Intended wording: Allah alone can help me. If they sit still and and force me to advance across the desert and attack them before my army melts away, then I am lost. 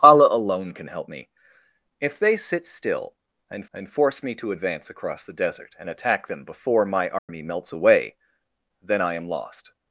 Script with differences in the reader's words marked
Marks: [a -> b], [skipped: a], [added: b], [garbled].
Allah alone can help me. If they sit still and and force me to advance across the desert and attack them before my army melts away, then I am lost.